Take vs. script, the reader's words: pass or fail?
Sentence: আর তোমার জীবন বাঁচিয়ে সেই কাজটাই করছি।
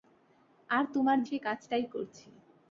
fail